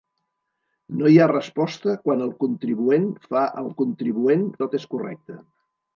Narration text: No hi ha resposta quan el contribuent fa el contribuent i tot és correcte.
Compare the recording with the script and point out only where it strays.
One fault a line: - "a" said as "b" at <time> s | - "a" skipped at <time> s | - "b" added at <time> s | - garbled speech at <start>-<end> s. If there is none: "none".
none